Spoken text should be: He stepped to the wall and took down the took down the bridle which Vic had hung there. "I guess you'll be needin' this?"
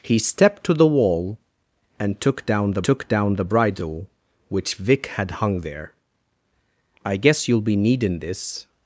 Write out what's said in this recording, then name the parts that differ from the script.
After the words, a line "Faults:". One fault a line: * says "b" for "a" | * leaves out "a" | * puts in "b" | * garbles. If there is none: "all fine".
He stepped to the wall and took down the took down the bridle which Vic had hung there. "I guess you'll be needin' this?"
Faults:
all fine